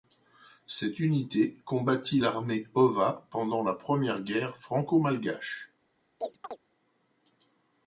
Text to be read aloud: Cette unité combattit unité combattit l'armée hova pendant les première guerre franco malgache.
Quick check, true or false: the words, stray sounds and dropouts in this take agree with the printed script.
false